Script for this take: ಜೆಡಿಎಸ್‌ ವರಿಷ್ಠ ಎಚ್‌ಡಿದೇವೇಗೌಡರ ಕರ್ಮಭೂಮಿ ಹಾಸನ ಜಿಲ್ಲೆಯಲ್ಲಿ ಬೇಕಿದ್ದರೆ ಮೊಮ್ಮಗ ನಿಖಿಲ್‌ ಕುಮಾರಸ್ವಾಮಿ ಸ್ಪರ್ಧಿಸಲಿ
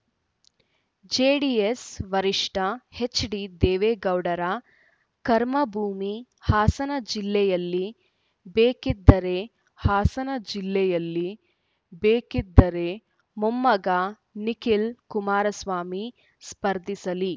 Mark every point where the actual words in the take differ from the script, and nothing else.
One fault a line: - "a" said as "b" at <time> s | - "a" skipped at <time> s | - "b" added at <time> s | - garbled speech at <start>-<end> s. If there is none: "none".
- "ಹಾಸನ ಜಿಲ್ಲೆಯಲ್ಲಿ ಬೇಕಿದ್ದರೆ" added at 9.8 s